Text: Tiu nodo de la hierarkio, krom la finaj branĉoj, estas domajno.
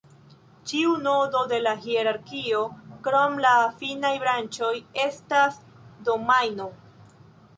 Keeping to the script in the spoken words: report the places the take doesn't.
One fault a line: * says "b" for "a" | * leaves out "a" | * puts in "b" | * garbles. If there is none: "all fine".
* says "Ĉiu" for "Tiu"